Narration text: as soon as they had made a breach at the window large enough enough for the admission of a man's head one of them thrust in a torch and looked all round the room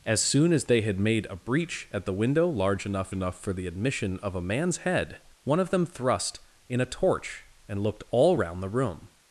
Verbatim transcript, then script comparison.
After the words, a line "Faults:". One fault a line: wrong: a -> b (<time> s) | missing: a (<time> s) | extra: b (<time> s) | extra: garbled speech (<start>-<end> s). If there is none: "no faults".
as soon as they had made a breach at the window large enough enough for the admission of a man's head one of them thrust in a torch and looked all round the room
Faults:
no faults